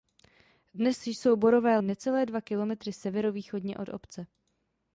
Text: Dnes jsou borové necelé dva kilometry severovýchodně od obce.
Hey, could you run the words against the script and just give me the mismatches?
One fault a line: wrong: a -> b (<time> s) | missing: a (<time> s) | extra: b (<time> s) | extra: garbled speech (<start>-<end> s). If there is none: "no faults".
no faults